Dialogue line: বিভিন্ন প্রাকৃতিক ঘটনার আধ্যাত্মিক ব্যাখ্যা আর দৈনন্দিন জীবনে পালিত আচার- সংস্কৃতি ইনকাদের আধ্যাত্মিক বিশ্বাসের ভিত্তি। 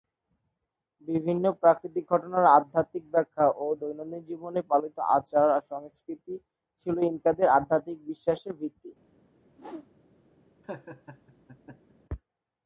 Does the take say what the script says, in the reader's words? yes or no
no